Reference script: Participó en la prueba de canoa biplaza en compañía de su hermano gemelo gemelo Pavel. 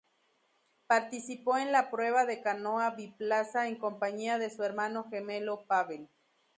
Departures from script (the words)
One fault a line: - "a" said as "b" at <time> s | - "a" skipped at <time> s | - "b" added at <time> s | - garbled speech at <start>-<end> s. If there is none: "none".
- "gemelo" skipped at 5.7 s